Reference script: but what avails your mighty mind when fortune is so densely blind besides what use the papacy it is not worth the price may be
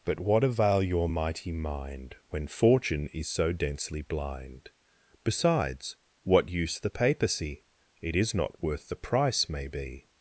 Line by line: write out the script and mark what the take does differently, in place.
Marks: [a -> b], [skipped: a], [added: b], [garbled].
but what [avails -> avail] your mighty mind when fortune is so densely blind besides what use the papacy it is not worth the price may be